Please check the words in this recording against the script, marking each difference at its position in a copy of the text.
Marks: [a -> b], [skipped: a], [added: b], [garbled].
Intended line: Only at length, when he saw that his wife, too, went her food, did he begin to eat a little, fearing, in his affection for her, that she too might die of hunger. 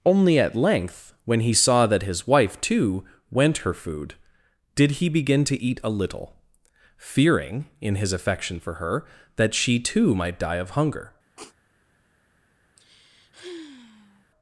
Only at length, when he saw that his wife, too, went her food, did he begin to eat a little, fearing, in his affection for her, that she too might die of hunger.